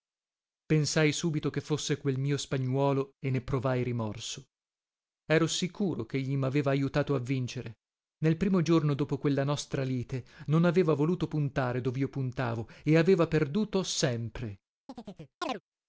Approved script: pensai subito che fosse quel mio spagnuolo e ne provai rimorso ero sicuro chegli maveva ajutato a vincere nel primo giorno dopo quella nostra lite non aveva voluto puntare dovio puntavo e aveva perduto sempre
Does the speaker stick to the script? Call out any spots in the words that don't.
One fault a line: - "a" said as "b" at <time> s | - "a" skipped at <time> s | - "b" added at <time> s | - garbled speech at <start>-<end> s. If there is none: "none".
none